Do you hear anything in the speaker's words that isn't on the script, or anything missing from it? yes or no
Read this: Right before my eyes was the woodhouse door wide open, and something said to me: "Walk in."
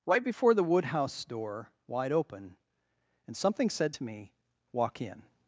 yes